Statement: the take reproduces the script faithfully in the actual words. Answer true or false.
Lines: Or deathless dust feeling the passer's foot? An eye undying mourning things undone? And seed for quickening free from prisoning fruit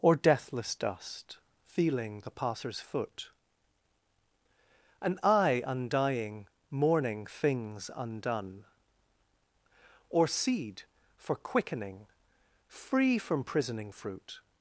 false